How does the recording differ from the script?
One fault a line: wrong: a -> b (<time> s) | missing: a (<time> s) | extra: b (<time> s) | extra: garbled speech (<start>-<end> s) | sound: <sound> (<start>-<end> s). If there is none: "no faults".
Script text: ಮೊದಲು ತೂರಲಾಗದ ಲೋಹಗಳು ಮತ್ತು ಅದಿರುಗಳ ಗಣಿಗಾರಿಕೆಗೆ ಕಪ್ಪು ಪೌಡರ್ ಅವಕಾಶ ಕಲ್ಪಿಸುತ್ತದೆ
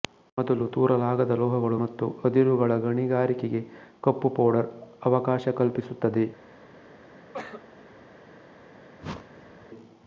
sound: cough (7.3-7.7 s)
sound: whoosh (9.0-9.7 s)